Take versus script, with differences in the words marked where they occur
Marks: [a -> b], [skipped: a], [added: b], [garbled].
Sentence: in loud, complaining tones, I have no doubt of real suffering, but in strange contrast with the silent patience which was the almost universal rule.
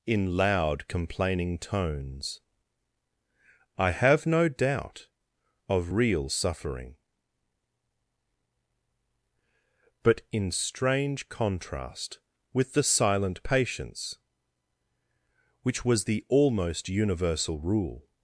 in loud, complaining tones, I have no doubt of real suffering, but in strange contrast with the silent patience which was the almost universal rule.